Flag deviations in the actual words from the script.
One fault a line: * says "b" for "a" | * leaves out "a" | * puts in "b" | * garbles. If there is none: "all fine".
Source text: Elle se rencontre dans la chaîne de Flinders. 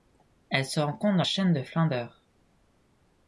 * leaves out "la"